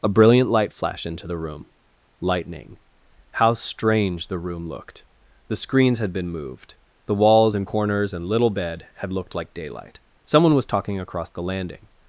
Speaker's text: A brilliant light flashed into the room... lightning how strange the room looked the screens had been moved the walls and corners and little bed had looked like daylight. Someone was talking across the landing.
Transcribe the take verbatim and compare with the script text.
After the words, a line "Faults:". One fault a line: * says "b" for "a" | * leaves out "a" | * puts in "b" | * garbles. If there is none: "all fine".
A brilliant light flashed into the room... lightning how strange the room looked the screens had been moved the walls and corners and little bed had looked like daylight. Someone was talking across the landing.
Faults:
all fine